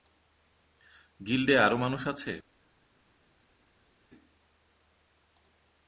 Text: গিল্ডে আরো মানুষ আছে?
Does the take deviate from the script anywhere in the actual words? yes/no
no